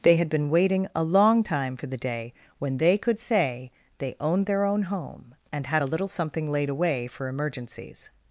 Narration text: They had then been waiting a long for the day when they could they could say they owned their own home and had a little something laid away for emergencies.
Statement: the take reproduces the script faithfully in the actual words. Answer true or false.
false